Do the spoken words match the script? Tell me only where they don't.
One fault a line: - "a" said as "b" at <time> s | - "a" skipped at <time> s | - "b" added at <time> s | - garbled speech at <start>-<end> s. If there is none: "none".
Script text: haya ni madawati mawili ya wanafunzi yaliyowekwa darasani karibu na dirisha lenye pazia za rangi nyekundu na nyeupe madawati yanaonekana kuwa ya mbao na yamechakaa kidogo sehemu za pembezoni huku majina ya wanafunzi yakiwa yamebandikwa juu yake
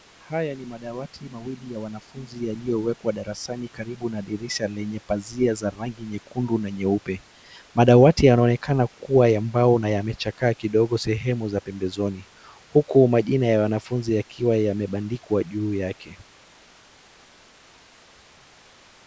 none